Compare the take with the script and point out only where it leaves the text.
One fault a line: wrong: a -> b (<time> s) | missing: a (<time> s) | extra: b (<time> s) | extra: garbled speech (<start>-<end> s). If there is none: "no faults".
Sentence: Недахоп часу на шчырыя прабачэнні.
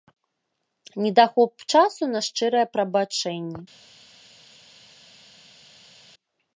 no faults